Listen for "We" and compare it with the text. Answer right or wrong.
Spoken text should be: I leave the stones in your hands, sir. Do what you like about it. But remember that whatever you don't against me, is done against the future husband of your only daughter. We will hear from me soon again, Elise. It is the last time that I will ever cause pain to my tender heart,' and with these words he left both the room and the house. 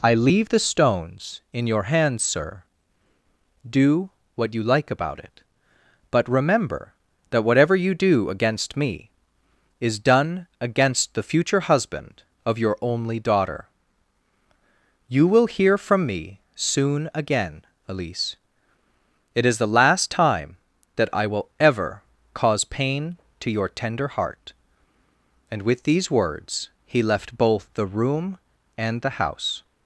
wrong